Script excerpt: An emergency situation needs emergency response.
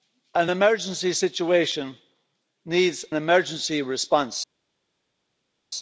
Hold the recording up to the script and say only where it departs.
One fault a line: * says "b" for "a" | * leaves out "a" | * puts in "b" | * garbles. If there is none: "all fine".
all fine